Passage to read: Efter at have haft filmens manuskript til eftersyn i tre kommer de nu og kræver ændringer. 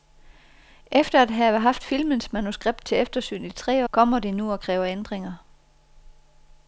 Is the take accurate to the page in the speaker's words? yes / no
yes